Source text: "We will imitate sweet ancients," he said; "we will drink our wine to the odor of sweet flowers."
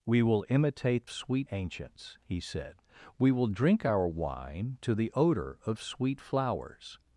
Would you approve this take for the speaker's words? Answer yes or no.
yes